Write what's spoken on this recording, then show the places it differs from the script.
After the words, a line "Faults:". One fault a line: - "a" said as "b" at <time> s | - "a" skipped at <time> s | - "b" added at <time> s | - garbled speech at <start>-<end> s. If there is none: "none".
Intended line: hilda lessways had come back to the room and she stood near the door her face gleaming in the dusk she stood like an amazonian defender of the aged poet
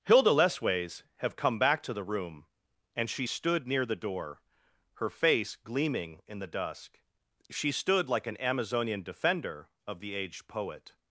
hilda lessways have come back to the room and she stood near the door her face gleaming in the dusk she stood like an amazonian defender of the aged poet
Faults:
- "had" said as "have" at 1.2 s